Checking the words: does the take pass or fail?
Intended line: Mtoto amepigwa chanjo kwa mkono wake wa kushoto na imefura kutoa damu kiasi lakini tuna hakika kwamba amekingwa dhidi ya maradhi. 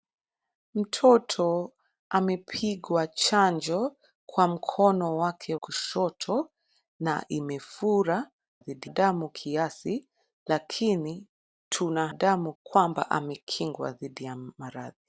fail